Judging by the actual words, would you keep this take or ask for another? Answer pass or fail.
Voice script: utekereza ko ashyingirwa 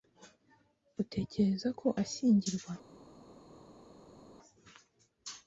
pass